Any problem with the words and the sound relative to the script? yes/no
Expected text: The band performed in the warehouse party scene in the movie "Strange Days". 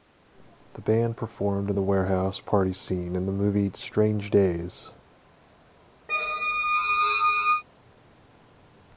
yes